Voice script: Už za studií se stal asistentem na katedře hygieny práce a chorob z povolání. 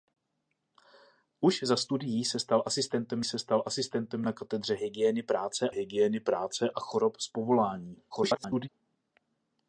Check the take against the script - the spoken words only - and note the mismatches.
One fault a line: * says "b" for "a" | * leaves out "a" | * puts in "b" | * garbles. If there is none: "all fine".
* puts in "se stal asistentem"
* puts in "hygieny práce"
* garbles